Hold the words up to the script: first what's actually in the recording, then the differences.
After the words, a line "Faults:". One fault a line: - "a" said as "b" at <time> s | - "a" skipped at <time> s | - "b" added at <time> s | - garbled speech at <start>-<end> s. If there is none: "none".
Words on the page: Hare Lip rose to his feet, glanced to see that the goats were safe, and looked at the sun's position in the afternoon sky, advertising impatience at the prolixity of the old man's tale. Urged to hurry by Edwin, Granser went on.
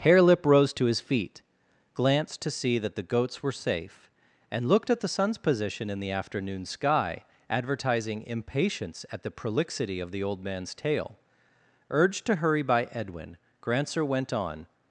Hare Lip rose to his feet, glanced to see that the goats were safe, and looked at the sun's position in the afternoon sky, advertising impatience at the prolixity of the old man's tale. Urged to hurry by Edwin, Granser went on.
Faults:
none